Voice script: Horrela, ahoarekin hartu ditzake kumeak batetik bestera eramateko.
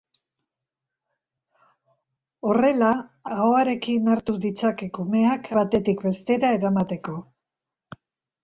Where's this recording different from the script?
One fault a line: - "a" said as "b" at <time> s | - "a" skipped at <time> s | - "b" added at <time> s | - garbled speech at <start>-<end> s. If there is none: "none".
none